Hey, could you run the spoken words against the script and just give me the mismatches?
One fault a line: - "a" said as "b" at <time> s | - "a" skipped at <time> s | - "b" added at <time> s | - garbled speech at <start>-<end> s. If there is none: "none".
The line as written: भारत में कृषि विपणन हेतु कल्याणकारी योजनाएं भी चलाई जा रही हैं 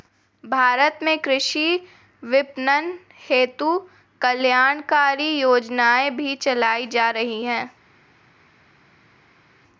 none